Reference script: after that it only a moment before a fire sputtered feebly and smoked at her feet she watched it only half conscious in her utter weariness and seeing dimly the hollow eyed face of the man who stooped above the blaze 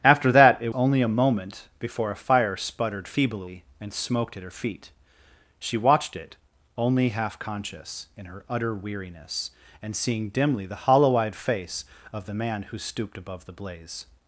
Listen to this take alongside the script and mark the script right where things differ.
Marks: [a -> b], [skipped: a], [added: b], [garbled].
after that it only a moment before a fire sputtered feebly and smoked at her feet she watched it only half conscious in her utter weariness and seeing dimly the hollow eyed face of the man who stooped above the blaze